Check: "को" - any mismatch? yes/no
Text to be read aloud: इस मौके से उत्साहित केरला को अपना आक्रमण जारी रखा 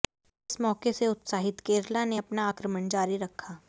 yes